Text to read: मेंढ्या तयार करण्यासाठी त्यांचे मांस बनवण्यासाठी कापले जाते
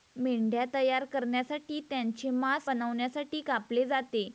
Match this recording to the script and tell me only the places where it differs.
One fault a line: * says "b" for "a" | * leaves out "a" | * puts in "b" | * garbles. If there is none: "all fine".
all fine